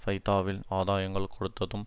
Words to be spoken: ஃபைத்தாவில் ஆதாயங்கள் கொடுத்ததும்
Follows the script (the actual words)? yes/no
yes